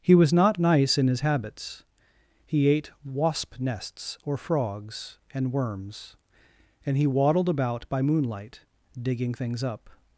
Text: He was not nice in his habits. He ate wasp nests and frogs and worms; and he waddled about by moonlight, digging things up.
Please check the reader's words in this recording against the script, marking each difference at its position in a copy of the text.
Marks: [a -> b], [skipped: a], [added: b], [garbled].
He was not nice in his habits. He ate wasp nests [and -> or] frogs and worms; and he waddled about by moonlight, digging things up.